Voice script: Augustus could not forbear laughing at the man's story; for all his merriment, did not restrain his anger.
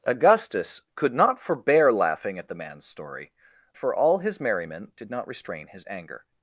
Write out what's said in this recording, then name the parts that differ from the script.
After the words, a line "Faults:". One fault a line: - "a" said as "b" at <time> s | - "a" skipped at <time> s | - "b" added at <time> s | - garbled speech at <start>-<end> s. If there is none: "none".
Augustus could not forbear laughing at the man's story; for all his merriment, did not restrain his anger.
Faults:
none